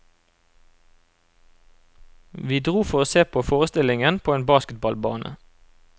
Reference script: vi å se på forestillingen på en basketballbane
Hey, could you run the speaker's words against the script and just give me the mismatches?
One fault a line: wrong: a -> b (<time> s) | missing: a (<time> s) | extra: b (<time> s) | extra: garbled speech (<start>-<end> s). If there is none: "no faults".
extra: dro for (2.6 s)